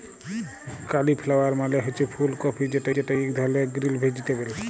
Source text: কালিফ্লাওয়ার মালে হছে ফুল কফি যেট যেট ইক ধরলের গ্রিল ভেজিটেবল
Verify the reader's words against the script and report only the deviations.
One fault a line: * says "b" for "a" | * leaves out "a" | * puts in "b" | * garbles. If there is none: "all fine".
all fine